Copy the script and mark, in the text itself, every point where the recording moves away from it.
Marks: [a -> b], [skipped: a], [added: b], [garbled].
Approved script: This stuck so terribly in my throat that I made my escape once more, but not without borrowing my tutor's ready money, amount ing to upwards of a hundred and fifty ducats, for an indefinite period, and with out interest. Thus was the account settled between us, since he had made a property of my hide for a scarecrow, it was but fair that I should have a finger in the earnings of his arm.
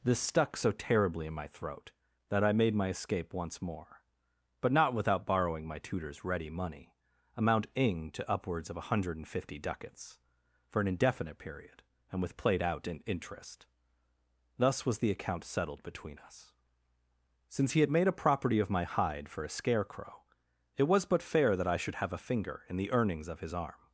This stuck so terribly in my throat that I made my escape once more, but not without borrowing my tutor's ready money, amount ing to upwards of a hundred and fifty ducats, for an indefinite period, and with [added: played] out [added: in] interest. Thus was the account settled between us, since he had made a property of my hide for a scarecrow, it was but fair that I should have a finger in the earnings of his arm.